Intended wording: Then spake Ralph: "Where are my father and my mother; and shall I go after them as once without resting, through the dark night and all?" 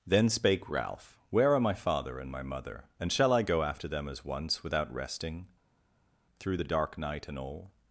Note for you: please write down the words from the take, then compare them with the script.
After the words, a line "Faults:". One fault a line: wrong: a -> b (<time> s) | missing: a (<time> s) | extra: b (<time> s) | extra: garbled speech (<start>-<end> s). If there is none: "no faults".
Then spake Ralph: "Where are my father and my mother; and shall I go after them as once without resting, through the dark night and all?"
Faults:
no faults